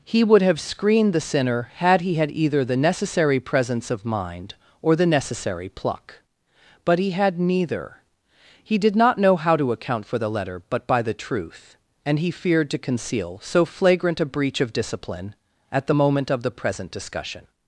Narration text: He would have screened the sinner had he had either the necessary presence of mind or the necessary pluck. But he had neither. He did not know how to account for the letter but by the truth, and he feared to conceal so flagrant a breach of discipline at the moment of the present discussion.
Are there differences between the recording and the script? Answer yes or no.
no